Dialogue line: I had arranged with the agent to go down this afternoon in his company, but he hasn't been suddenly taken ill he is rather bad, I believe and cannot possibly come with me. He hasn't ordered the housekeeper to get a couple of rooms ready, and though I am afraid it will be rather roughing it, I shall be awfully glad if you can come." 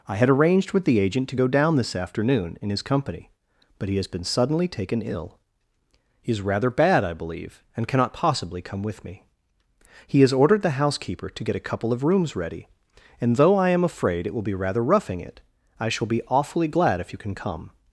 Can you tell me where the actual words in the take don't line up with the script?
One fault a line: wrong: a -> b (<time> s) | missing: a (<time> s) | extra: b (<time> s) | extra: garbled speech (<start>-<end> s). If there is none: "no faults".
wrong: hasn't -> has (4.0 s)
wrong: hasn't -> has (10.2 s)